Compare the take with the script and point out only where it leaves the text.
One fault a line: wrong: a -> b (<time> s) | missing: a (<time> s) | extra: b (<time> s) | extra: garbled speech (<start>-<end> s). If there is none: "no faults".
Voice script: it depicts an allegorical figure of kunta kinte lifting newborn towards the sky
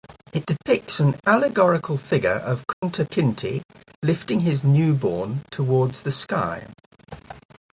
extra: his (4.4 s)